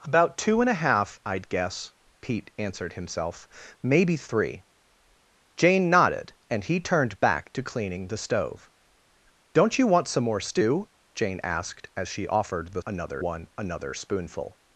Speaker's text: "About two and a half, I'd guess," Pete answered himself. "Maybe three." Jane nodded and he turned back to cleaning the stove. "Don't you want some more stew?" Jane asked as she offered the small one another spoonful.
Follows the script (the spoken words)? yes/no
no